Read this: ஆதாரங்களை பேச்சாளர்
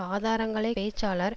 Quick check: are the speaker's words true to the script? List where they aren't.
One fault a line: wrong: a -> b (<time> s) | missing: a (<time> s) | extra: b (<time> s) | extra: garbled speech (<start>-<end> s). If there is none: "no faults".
no faults